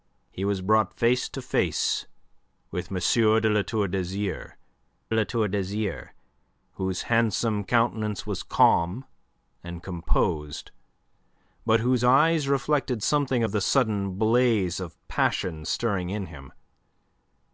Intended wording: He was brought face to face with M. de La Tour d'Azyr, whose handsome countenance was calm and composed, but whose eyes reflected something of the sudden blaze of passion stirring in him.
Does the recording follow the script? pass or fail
fail